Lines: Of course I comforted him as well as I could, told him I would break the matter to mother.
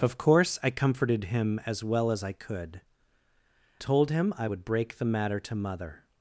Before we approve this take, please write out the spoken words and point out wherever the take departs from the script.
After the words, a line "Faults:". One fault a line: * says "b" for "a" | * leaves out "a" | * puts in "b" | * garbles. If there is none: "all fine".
Of course I comforted him as well as I could, told him I would break the matter to mother.
Faults:
all fine